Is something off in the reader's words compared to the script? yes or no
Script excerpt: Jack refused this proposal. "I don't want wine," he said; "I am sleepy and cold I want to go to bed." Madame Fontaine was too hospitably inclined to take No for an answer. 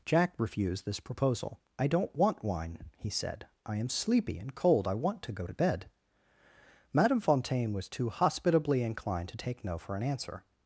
no